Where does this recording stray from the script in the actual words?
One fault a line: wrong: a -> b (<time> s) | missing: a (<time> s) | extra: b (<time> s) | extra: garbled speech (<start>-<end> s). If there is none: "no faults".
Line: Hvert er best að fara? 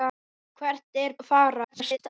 missing: best (1.1 s)
extra: garbled speech (1.6-2.1 s)